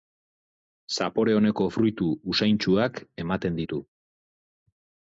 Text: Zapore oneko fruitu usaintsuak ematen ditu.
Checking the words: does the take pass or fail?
pass